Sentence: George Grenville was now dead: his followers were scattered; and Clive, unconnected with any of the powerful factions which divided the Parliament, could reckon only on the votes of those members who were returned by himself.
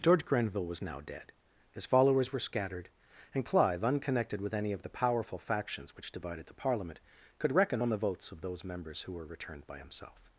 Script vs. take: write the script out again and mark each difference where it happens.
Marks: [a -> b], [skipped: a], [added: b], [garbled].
George Grenville was now dead: his followers were scattered; and Clive, unconnected with any of the powerful factions which divided the Parliament, could reckon [skipped: only] on the votes of those members who were returned by himself.